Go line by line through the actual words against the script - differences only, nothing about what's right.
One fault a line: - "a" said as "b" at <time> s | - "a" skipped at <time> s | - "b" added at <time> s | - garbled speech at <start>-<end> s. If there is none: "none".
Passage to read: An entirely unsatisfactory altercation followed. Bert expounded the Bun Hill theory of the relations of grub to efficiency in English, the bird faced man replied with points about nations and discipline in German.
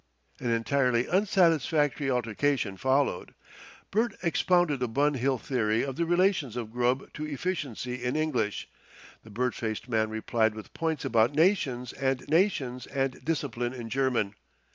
- "nations and" added at 12.3 s